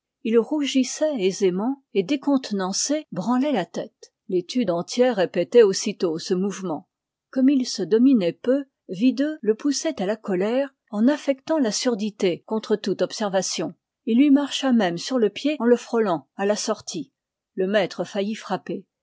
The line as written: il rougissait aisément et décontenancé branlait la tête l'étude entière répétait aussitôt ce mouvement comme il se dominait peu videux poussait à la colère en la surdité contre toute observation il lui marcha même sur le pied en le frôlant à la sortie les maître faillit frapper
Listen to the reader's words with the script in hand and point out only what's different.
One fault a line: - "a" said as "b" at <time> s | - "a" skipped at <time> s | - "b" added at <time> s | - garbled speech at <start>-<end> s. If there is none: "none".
- "le" added at 9.4 s
- "affectant" added at 11.1 s
- "les" said as "le" at 17.6 s